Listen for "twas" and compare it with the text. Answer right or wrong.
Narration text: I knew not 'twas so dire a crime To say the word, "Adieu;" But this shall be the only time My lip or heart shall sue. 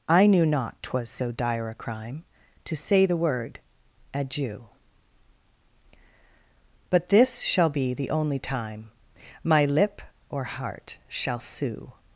right